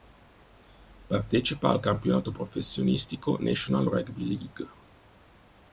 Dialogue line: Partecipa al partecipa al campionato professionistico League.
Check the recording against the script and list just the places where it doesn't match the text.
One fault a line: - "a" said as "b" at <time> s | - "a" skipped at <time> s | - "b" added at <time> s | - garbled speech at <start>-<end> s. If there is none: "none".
- "partecipa al campionato professionistico" said as "campionato professionistico National Rugby" at 1.8 s